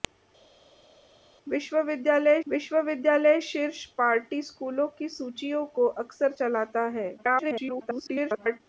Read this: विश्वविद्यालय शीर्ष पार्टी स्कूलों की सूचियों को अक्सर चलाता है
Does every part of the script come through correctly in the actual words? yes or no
no